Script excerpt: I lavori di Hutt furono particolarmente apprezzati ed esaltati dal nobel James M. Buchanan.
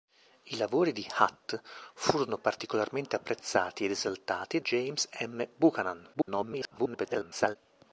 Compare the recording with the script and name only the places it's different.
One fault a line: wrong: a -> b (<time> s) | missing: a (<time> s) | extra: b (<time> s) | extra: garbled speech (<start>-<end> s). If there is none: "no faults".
missing: dal nobel (4.6 s)
extra: garbled speech (6.1-7.6 s)